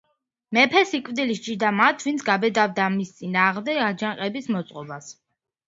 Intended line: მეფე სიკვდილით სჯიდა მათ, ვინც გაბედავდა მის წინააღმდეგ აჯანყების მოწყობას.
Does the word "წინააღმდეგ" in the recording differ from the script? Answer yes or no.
no